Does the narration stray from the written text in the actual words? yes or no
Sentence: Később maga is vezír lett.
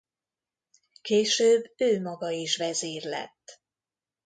yes